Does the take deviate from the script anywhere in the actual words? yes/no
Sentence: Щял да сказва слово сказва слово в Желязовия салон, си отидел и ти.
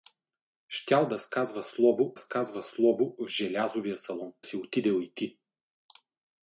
no